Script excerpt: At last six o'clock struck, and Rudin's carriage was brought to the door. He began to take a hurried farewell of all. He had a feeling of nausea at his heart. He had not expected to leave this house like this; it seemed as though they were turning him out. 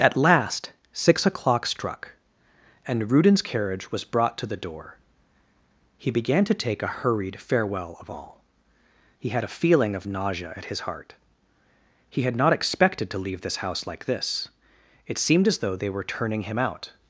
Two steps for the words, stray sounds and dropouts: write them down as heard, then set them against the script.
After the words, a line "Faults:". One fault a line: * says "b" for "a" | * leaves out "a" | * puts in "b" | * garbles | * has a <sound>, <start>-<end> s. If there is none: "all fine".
At last six o'clock struck, and Rudin's carriage was brought to the door. He began to take a hurried farewell of all. He had a feeling of nausea at his heart. He had not expected to leave this house like this; it seemed as though they were turning him out.
Faults:
all fine